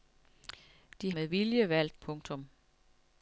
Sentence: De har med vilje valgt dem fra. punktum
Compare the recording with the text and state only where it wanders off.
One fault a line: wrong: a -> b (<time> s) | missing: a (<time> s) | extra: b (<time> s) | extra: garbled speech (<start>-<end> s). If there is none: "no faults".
missing: har (1.1 s)
missing: dem fra (2.0 s)